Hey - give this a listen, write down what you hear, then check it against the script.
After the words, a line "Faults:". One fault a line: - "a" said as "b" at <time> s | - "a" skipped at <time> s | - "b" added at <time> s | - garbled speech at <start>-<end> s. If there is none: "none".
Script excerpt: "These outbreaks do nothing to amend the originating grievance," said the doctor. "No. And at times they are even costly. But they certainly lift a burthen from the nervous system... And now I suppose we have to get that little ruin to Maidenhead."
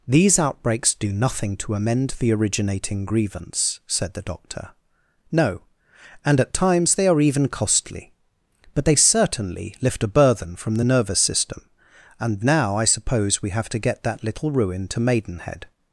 "These outbreaks do nothing to amend the originating grievance," said the doctor. "No. And at times they are even costly. But they certainly lift a burthen from the nervous system... And now I suppose we have to get that little ruin to Maidenhead."
Faults:
none